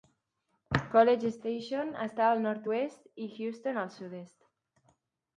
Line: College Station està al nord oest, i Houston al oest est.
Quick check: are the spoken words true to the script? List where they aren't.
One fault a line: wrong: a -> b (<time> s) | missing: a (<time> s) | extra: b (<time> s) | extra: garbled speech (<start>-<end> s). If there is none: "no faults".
wrong: oest -> sud (4.0 s)